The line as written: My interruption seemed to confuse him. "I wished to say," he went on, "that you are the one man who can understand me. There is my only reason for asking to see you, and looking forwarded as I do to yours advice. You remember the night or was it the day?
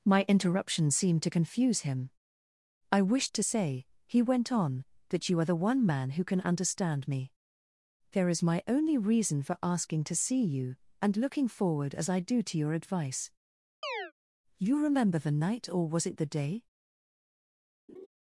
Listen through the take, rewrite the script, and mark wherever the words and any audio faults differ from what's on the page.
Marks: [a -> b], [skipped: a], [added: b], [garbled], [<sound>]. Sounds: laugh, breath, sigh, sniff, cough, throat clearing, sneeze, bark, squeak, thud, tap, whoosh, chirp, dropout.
My interruption seemed to confuse him. "I wished to say," he went on, "that you are the one man who can understand me. There is my only reason for asking to see you, and looking [forwarded -> forward] as I do to [yours -> your] advice. [chirp] You remember the night or was it the day? [laugh]